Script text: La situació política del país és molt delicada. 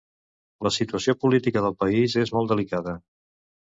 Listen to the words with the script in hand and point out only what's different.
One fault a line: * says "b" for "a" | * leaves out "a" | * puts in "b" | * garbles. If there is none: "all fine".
all fine